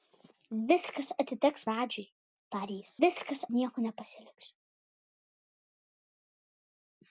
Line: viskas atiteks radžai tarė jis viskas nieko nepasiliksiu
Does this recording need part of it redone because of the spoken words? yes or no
no